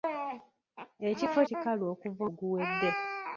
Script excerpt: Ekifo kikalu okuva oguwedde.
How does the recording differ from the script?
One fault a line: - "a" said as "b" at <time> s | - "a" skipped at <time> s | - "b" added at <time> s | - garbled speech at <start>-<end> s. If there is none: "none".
none